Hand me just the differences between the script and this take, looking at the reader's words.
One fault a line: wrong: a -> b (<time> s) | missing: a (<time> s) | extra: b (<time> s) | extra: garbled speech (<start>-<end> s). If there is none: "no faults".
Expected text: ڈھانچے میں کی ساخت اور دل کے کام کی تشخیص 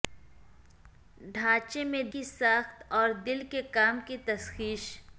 no faults